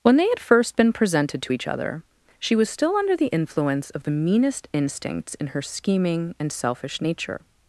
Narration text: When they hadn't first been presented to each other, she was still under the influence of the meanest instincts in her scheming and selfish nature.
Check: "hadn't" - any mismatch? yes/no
yes